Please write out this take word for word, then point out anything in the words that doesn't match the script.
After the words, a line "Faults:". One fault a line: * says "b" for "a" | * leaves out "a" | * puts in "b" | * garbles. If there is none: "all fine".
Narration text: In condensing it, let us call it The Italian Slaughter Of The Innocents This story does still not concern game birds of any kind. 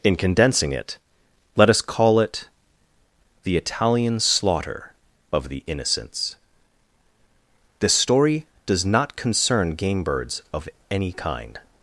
In condensing it, let us call it The Italian Slaughter Of The Innocents This story does not concern game birds of any kind.
Faults:
* leaves out "still"